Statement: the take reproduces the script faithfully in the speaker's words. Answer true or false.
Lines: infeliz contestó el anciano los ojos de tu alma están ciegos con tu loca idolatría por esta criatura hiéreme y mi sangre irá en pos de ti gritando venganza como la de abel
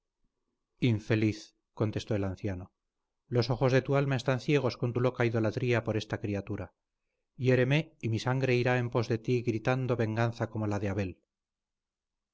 true